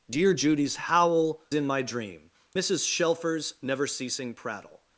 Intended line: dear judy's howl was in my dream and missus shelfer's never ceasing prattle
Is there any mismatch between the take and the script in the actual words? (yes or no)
yes